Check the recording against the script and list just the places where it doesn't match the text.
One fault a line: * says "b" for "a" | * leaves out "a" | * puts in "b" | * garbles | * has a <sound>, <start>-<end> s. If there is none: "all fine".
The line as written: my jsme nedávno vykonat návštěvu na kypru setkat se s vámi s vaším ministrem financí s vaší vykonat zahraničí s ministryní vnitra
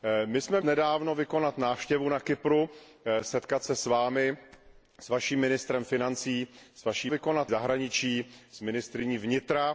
all fine